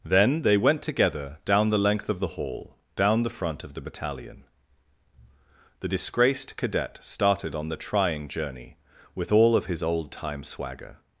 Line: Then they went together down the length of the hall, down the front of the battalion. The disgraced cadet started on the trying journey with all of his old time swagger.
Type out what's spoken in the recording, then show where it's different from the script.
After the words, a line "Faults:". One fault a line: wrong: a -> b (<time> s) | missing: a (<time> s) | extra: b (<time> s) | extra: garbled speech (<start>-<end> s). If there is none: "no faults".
Then they went together down the length of the hall, down the front of the battalion. The disgraced cadet started on the trying journey with all of his old time swagger.
Faults:
no faults